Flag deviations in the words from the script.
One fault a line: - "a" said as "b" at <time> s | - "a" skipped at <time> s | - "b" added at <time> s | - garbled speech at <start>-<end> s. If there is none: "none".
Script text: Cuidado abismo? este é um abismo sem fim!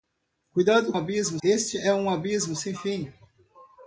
none